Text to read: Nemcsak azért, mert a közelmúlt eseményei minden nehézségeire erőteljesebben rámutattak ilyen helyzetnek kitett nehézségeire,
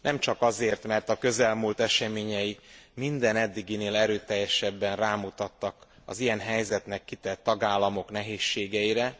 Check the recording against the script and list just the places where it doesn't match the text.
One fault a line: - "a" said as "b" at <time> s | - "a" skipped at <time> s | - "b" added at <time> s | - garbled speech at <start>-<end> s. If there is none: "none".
- "nehézségeire" said as "eddiginél" at 3.4 s
- "az" added at 6.0 s
- "tagállamok" added at 7.4 s